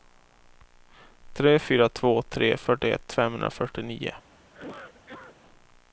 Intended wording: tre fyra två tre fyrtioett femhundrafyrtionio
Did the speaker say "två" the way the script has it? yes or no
yes